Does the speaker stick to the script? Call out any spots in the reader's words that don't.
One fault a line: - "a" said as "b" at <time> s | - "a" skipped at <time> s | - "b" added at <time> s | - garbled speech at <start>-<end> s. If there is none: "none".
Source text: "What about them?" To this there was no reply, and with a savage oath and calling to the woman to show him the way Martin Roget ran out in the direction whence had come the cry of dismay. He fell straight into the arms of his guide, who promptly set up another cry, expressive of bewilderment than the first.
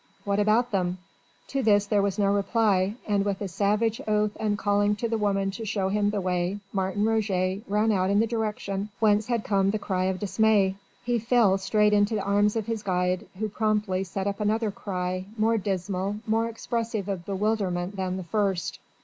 - "more dismal more" added at 15.4 s